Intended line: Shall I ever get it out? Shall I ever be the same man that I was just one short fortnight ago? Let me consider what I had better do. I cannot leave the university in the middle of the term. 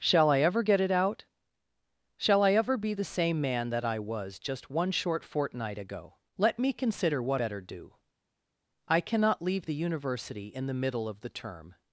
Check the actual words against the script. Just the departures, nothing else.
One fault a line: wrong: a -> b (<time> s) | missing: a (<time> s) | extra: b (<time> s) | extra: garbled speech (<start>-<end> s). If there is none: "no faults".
missing: I had (7.4 s)